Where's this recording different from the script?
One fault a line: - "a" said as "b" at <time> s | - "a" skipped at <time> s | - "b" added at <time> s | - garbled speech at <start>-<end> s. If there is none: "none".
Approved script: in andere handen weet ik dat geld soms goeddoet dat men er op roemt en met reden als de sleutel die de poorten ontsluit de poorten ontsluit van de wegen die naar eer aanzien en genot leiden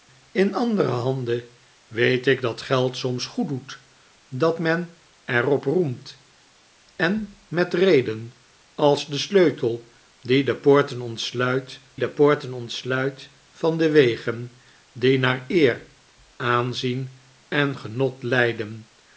none